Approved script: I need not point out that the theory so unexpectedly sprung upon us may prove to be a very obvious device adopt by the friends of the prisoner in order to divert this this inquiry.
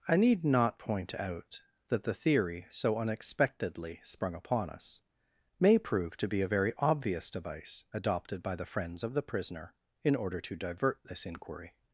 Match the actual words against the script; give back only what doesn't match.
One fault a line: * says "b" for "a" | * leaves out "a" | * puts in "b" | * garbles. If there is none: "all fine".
* says "adopted" for "adopt"
* leaves out "this"